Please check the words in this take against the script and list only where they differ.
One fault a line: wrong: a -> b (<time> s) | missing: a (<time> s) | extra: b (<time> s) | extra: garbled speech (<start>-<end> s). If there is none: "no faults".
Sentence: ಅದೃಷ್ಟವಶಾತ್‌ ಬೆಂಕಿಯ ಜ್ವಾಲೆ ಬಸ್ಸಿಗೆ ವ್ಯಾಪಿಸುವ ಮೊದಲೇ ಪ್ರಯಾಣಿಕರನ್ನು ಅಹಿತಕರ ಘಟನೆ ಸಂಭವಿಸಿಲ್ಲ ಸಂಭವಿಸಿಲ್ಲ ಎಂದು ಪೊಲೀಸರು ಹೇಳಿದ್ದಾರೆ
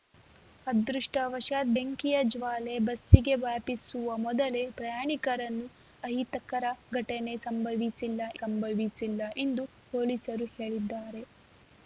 no faults